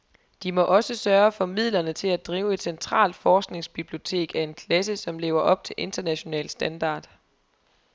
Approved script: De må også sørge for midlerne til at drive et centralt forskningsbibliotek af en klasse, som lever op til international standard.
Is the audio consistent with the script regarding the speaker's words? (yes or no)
yes